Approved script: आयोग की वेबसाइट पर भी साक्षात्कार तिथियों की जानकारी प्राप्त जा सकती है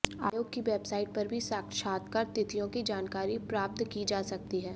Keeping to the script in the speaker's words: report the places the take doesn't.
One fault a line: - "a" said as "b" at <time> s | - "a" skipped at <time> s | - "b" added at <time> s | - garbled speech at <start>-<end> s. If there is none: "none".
- "की" added at 3.9 s